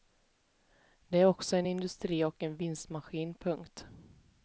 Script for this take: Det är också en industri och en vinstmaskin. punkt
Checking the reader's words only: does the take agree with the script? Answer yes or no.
yes